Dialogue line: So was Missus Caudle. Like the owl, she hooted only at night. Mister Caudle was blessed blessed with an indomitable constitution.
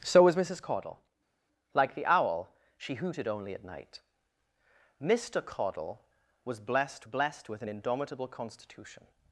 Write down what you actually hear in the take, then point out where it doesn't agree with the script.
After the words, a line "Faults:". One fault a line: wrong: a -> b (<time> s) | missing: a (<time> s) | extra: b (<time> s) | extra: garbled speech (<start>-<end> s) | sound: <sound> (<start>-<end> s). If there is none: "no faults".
So was Missus Caudle. Like the owl, she hooted only at night. Mister Caudle was blessed blessed with an indomitable constitution.
Faults:
no faults